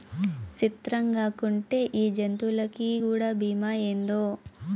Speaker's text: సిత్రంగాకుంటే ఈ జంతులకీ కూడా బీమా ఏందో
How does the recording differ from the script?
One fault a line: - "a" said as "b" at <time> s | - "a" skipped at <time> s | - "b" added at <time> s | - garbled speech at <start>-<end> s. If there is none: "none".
none